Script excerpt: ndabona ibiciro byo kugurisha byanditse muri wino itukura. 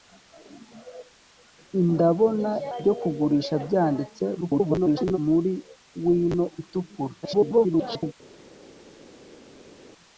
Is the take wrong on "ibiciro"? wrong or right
wrong